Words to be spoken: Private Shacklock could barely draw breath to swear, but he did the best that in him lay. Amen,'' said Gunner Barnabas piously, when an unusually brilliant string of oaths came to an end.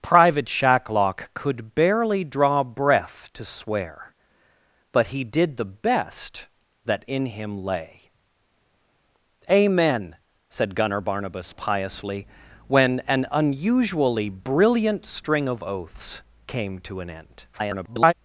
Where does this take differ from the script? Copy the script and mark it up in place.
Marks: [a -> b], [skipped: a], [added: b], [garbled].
Private Shacklock could barely draw breath to swear, but he did the best that in him lay. Amen,'' said Gunner Barnabas piously, when an unusually brilliant string of oaths came to an end. [garbled]